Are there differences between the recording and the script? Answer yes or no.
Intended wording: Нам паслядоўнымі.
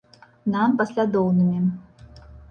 no